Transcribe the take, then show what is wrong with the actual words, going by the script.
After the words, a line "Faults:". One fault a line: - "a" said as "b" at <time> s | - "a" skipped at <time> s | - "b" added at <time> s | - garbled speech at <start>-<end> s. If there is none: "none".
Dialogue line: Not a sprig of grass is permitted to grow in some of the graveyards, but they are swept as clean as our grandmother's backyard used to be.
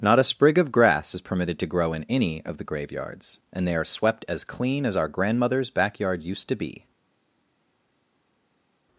Not a sprig of grass is permitted to grow in any of the graveyards, and they are swept as clean as our grandmother's backyard used to be.
Faults:
- "some" said as "any" at 2.1 s
- "but" said as "and" at 3.5 s